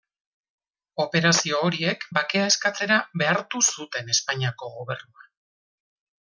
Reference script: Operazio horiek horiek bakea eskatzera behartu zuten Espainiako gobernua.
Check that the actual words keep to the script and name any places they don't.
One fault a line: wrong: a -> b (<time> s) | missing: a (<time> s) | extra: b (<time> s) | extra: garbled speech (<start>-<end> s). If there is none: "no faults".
missing: horiek (2.1 s)